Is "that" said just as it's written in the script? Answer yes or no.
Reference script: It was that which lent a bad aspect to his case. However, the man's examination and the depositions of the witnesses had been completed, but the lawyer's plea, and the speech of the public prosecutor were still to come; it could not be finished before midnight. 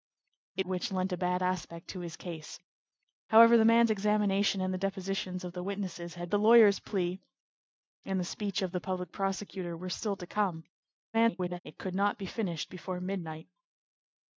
no